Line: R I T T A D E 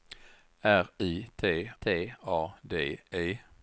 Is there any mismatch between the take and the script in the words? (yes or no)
no